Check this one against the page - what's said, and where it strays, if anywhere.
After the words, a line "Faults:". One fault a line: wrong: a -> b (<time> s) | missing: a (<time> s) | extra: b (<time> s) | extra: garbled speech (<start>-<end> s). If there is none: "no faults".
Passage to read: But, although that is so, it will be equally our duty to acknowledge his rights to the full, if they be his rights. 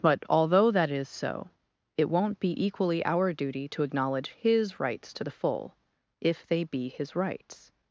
But, although that is so, it won't be equally our duty to acknowledge his rights to the full, if they be his rights.
Faults:
wrong: will -> won't (2.1 s)